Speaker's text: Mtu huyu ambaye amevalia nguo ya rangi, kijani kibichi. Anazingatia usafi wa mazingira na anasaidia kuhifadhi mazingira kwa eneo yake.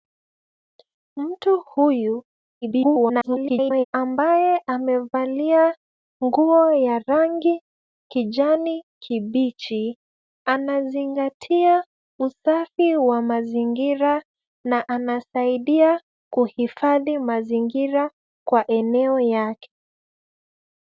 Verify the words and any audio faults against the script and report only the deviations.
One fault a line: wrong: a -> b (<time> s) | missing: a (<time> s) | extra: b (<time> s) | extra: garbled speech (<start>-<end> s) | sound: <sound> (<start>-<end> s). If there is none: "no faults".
extra: garbled speech (2.6-3.8 s)